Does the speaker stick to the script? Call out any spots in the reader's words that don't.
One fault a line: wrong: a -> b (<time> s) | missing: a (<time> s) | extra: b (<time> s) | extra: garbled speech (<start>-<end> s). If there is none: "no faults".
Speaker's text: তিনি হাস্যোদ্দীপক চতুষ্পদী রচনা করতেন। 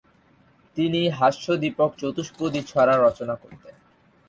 extra: ছড়া (2.6 s)